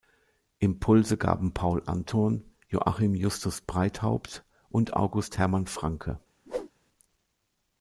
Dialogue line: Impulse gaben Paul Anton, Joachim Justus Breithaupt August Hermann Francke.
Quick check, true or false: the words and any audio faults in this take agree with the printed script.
false